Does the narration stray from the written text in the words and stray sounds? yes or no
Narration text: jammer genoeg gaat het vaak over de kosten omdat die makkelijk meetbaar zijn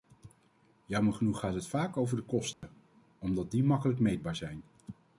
yes